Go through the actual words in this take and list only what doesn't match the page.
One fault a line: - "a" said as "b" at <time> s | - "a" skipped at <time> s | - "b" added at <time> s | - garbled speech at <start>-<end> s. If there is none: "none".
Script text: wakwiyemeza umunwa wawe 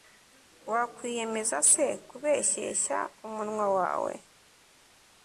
- "se kubeshyeshya" added at 1.7 s